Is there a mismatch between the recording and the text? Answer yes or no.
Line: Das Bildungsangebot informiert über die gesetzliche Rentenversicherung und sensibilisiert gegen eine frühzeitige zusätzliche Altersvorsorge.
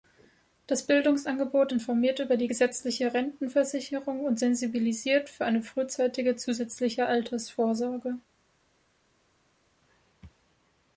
yes